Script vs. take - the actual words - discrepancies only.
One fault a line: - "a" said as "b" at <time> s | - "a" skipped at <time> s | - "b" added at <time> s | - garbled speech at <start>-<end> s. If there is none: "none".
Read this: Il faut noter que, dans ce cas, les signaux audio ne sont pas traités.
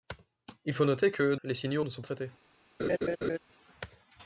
- "dans ce cas" skipped at 1.4 s
- "audio" skipped at 1.8 s
- "pas" skipped at 2.0 s